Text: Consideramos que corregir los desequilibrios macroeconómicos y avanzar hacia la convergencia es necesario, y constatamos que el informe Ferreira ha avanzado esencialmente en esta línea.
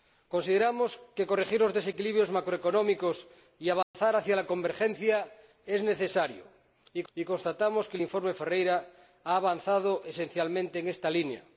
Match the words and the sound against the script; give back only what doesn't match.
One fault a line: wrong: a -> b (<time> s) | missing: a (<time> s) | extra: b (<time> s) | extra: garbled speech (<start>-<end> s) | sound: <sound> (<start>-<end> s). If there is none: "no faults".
sound: dropout (3.8-3.9 s)
extra: y (7.1 s)